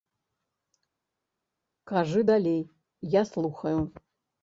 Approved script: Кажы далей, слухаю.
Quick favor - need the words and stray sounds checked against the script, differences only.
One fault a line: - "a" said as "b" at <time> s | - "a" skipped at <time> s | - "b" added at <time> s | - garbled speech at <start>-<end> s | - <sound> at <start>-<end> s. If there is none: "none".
- "я" added at 3.0 s